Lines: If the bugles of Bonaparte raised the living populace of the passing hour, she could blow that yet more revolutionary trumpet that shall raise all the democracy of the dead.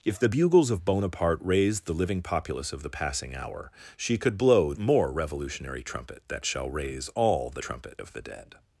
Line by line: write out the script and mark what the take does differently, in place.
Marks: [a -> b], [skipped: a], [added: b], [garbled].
If the bugles of Bonaparte raised the living populace of the passing hour, she could blow [skipped: that yet] more revolutionary trumpet that shall raise all the [democracy -> trumpet] of the dead.